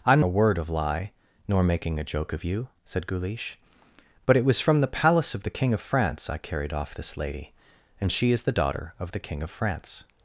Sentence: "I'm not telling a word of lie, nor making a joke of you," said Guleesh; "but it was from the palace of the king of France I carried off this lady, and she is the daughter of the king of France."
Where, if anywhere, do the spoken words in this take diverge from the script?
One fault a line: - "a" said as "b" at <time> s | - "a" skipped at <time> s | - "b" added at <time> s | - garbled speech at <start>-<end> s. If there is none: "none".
- "not telling" skipped at 0.2 s